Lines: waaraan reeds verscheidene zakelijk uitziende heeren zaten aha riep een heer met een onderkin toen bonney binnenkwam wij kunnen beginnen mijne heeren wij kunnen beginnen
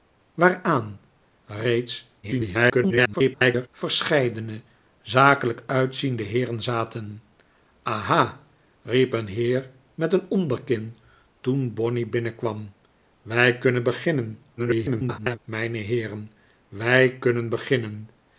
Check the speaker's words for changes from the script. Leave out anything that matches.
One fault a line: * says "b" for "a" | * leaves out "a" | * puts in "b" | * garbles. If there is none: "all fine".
* garbles
* garbles